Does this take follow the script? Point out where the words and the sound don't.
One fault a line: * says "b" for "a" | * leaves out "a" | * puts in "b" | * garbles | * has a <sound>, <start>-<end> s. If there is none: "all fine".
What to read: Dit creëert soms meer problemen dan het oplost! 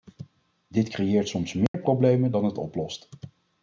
* has a dropout, 1.7-1.7 s